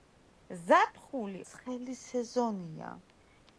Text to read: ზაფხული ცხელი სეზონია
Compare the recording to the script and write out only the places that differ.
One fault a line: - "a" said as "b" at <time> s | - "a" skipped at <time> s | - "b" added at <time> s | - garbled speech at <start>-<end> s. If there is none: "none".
none